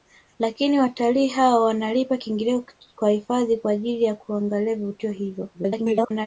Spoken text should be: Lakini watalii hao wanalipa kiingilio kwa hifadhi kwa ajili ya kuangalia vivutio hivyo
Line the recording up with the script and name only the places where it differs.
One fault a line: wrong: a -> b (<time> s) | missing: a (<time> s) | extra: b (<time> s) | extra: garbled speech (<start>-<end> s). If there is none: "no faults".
extra: garbled speech (5.5-6.3 s)